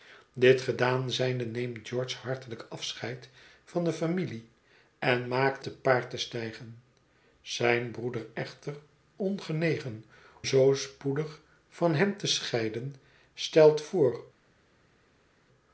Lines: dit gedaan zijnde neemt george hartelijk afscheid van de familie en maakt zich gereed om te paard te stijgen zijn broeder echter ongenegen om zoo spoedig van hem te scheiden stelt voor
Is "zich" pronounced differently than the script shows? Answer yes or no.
yes